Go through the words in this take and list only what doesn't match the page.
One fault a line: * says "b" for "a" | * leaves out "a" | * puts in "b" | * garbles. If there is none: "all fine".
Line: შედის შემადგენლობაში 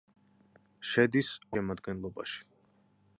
all fine